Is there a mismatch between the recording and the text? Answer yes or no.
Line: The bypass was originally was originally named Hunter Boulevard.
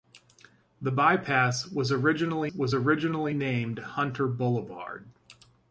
no